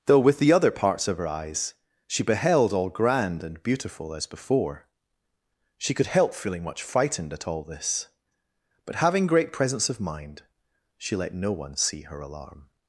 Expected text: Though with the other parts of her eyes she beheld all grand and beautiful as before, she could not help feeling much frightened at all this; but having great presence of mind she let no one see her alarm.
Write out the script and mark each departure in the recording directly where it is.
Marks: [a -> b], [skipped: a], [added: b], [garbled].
Though with the other parts of her eyes she beheld all grand and beautiful as before, she could [skipped: not] help feeling much frightened at all this; but having great presence of mind she let no one see her alarm.